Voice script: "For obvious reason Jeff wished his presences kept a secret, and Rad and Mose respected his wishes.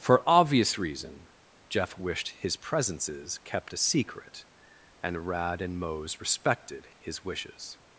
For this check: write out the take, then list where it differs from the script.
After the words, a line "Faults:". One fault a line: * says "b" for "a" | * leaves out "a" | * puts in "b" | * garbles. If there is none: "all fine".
"For obvious reason Jeff wished his presences kept a secret, and Rad and Mose respected his wishes.
Faults:
all fine